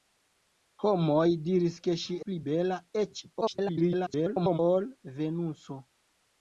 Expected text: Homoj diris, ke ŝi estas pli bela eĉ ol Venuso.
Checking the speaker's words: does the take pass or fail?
fail